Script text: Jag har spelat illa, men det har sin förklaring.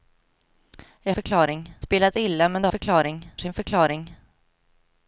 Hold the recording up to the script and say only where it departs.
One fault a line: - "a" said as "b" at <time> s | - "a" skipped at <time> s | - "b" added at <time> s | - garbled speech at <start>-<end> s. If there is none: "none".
- "har" said as "förklaring" at 1.1 s
- "har" said as "förklaring" at 2.7 s